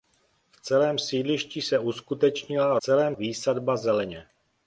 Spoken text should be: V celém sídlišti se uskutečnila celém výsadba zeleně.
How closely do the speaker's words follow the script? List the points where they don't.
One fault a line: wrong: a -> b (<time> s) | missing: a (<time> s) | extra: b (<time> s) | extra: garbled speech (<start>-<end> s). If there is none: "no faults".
no faults